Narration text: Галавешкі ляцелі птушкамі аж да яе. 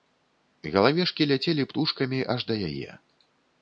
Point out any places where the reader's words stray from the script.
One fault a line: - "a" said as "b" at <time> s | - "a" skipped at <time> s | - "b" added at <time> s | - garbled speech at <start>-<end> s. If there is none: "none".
none